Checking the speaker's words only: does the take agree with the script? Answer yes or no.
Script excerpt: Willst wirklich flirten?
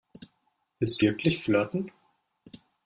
yes